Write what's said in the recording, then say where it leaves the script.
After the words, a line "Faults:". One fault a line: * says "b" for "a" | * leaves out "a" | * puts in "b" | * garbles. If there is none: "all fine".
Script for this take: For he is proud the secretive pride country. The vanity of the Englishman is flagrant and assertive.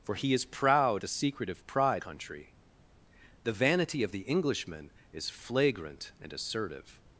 For he is proud the secretive pride country. The vanity of the Englishman is flagrant and assertive.
Faults:
all fine